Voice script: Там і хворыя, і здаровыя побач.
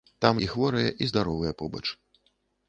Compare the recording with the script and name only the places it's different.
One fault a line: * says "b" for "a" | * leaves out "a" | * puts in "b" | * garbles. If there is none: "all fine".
all fine